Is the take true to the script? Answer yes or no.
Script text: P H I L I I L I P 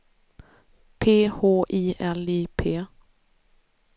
no